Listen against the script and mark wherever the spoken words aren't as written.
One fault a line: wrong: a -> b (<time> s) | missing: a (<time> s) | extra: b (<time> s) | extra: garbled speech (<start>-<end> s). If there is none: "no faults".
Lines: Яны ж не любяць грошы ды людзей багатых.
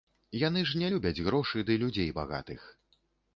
no faults